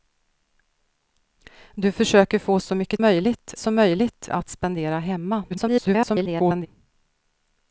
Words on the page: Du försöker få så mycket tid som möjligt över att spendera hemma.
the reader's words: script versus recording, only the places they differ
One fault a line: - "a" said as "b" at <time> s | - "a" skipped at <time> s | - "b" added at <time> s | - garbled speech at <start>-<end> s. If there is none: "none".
- "tid" said as "möjligt" at 3.0 s
- "över" skipped at 4.3 s
- garbled speech at 5.5-6.7 s